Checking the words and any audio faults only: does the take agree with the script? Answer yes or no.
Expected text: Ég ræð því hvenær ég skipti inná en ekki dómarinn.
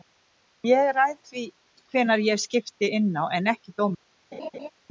no